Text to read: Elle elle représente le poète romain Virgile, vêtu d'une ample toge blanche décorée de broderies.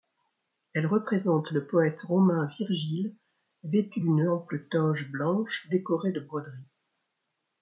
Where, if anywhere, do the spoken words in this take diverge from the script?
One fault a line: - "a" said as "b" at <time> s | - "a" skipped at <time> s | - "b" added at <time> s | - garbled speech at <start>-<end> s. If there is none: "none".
- "elle" skipped at 0.9 s